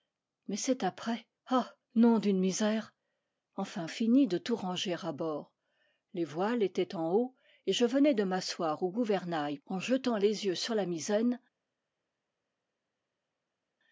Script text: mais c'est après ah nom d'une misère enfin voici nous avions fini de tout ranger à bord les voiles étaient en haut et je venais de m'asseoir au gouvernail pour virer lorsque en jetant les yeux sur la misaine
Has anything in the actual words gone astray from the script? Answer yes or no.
yes